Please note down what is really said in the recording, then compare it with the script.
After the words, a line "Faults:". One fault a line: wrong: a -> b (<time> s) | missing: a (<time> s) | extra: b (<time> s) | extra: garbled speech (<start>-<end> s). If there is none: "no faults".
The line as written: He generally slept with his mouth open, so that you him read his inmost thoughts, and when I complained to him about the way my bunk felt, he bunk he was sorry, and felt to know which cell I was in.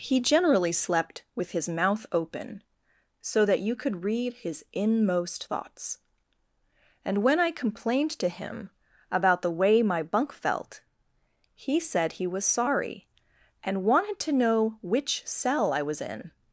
He generally slept with his mouth open, so that you could read his inmost thoughts, and when I complained to him about the way my bunk felt, he said he was sorry, and wanted to know which cell I was in.
Faults:
wrong: him -> could (3.8 s)
wrong: bunk -> said (11.8 s)
wrong: felt -> wanted (13.8 s)